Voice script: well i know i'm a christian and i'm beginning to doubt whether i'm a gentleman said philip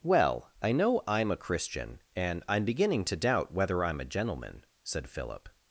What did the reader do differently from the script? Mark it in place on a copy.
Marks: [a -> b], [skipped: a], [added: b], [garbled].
well i know i'm a christian and i'm beginning to doubt whether i'm a gentleman said philip